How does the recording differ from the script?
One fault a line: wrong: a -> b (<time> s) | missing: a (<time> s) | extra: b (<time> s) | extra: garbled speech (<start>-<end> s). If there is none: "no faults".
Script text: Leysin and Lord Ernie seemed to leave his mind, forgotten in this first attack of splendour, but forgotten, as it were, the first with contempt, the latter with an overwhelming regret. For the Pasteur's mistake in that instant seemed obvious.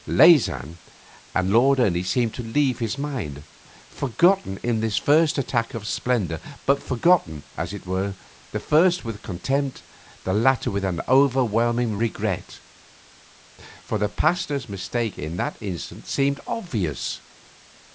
no faults